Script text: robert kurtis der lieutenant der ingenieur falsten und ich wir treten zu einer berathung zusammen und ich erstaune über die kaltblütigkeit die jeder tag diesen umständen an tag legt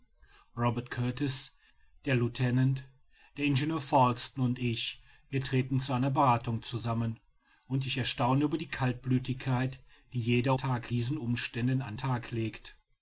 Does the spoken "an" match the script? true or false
true